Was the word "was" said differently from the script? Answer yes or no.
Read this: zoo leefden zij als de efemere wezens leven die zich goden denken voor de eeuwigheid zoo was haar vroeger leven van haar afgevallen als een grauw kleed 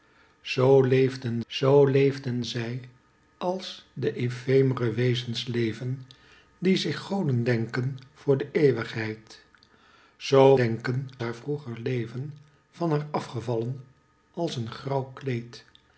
yes